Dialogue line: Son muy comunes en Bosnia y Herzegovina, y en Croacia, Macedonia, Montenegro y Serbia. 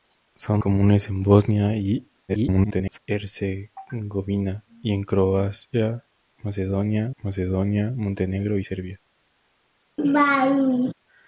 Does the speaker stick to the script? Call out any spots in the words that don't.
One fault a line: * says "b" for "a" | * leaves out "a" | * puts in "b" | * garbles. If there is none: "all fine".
* leaves out "muy"
* garbles
* puts in "Macedonia"